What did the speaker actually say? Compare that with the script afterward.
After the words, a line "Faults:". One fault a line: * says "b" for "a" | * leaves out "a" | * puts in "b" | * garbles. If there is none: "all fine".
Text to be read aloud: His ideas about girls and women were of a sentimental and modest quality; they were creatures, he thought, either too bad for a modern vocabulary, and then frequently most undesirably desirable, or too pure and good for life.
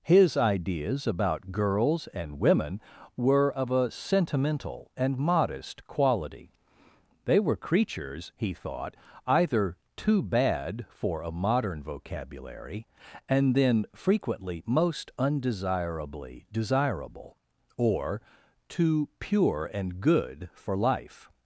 His ideas about girls and women were of a sentimental and modest quality; they were creatures, he thought, either too bad for a modern vocabulary, and then frequently most undesirably desirable, or too pure and good for life.
Faults:
all fine